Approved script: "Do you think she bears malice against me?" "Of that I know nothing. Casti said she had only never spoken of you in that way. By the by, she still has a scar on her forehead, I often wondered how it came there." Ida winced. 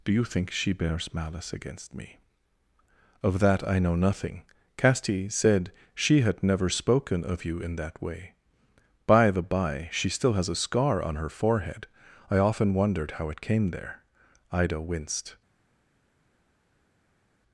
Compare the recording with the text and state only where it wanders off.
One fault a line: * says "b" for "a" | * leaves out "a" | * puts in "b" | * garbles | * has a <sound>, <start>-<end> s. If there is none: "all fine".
* leaves out "only"